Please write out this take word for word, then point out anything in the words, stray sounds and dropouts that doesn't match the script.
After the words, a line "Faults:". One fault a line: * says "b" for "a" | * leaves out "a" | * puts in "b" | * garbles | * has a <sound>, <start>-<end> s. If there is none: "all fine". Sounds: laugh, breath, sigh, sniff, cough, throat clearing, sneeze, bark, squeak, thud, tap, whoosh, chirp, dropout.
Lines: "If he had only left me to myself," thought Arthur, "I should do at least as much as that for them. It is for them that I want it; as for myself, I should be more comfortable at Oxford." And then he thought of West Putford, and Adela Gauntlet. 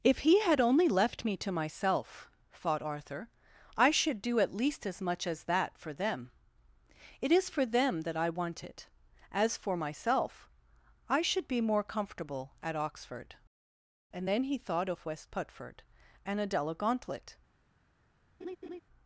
"If he had only left me to myself," thought Arthur, "I should do at least as much as that for them. It is for them that I want it; as for myself, I should be more comfortable at Oxford." And then he thought of West Putford, and Adela Gauntlet.
Faults:
* has a laugh, 18.4-18.8 s